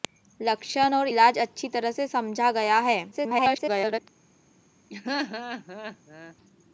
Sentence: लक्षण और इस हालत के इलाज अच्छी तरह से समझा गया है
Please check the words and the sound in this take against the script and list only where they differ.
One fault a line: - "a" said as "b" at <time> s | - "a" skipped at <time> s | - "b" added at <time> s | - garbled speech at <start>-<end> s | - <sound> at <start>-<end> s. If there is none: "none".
- "इस हालत के" skipped at 1.1 s
- garbled speech at 3.1-4.0 s
- laugh at 4.9-6.4 s